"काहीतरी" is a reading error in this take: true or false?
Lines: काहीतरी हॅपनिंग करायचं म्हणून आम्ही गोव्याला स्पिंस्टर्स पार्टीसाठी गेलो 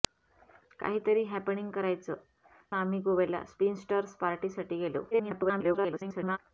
false